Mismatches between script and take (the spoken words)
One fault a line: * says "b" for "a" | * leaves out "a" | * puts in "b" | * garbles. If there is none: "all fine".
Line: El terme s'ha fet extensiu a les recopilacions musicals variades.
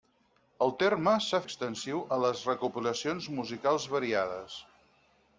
* leaves out "fet"